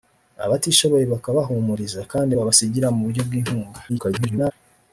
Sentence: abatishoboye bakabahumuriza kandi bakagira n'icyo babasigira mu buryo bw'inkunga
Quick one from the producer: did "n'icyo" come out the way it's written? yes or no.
no